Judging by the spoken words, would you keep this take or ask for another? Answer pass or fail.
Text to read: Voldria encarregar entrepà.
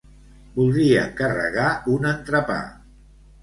fail